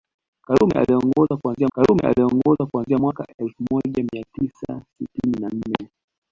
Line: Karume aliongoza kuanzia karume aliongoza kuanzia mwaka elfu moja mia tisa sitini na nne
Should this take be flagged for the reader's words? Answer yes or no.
no